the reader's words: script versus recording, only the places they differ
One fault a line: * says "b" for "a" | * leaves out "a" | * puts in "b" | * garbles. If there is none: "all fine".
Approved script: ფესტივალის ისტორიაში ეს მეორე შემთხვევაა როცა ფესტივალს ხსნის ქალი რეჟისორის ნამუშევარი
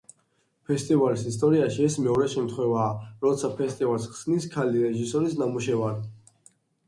all fine